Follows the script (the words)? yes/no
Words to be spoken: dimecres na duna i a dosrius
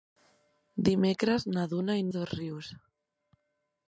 yes